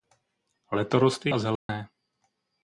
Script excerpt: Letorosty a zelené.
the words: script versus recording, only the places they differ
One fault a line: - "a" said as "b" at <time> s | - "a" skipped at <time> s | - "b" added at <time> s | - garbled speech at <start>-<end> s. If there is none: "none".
none